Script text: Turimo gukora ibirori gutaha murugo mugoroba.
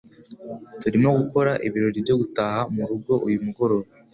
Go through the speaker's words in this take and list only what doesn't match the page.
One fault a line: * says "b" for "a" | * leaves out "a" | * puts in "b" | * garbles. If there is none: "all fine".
* puts in "byo"
* puts in "uyu"